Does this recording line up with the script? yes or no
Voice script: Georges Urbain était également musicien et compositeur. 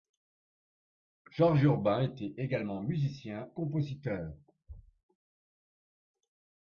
no